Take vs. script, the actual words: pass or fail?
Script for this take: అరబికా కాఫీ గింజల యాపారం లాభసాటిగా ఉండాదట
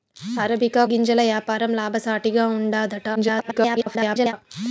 fail